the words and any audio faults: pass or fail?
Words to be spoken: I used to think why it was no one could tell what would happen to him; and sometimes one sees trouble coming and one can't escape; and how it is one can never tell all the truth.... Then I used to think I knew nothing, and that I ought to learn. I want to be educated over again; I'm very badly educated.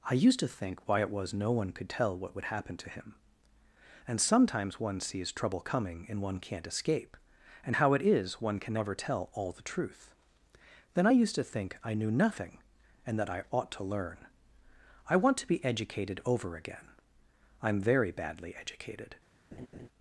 fail